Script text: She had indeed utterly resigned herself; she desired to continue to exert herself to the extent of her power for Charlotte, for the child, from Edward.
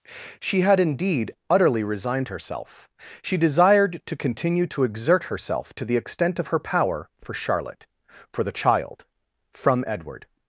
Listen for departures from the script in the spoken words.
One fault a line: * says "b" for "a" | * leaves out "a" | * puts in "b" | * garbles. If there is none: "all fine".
all fine